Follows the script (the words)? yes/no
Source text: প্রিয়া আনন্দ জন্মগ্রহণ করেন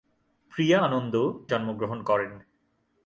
yes